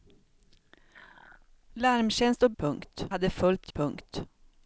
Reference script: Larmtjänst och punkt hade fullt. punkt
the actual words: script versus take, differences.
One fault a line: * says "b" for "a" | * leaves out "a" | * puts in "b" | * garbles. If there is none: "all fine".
all fine